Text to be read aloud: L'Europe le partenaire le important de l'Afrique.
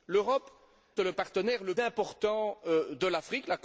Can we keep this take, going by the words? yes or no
yes